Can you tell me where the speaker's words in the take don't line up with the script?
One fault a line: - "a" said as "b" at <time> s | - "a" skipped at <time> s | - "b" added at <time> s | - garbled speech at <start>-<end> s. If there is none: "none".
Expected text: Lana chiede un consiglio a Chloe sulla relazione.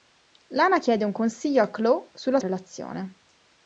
none